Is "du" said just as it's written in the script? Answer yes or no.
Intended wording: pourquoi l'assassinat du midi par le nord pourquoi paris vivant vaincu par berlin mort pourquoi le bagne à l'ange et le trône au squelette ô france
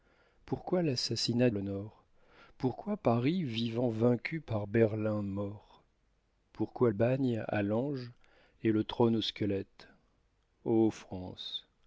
no